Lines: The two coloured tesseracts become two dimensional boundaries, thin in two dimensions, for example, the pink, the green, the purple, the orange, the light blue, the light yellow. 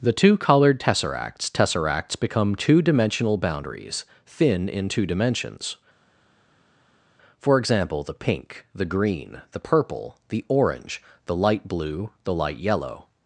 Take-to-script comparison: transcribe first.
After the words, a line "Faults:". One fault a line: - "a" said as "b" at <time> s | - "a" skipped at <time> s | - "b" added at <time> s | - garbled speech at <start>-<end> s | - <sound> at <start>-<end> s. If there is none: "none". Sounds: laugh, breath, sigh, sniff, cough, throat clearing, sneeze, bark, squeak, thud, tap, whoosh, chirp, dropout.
The two coloured tesseracts tesseracts become two dimensional boundaries, thin in two dimensions, for example, the pink, the green, the purple, the orange, the light blue, the light yellow.
Faults:
- "tesseracts" added at 1.5 s